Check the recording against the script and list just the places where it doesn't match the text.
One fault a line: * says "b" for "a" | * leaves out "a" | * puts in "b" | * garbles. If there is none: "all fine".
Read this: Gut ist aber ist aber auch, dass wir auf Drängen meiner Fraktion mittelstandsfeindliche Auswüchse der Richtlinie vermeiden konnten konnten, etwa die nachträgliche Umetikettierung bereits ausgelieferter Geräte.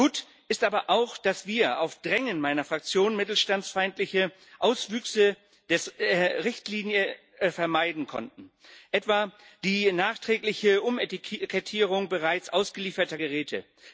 * leaves out "ist aber"
* leaves out "konnten"